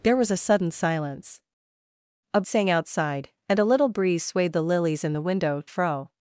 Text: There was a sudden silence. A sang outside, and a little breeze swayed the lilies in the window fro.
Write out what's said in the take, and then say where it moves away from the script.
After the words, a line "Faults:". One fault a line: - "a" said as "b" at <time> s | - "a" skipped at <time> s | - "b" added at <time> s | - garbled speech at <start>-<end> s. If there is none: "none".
There was a sudden silence. A sang outside, and a little breeze swayed the lilies in the window fro.
Faults:
none